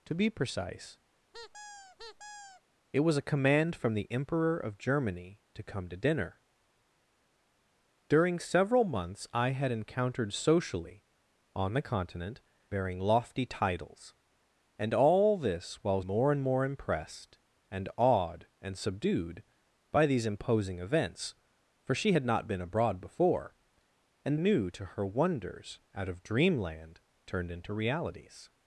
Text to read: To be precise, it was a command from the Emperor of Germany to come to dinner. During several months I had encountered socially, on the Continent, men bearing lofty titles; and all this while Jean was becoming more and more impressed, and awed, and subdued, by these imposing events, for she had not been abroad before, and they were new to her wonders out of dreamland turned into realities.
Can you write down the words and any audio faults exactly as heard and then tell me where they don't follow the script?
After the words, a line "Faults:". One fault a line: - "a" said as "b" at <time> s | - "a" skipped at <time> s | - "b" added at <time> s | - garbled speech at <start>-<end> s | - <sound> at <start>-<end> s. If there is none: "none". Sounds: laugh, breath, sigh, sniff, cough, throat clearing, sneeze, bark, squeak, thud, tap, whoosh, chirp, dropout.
To be precise, it was a command from the Emperor of Germany to come to dinner. During several months I had encountered socially, on the Continent, bearing lofty titles; and all this while More and more impressed, and awed, and subdued, by these imposing events, for she had not been abroad before, and new to her wonders out of dreamland turned into realities.
Faults:
- squeak at 1.3-2.6 s
- "men" skipped at 12.4 s
- "Jean was becoming" skipped at 16.0 s
- "they were" skipped at 24.4 s